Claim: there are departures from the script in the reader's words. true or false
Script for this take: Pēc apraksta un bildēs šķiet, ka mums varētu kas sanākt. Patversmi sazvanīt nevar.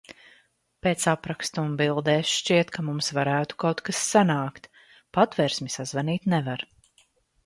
true